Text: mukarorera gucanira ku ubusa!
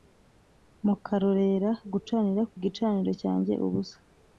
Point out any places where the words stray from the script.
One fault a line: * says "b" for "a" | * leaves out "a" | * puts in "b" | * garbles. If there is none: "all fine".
* puts in "gicaniro cyanjye"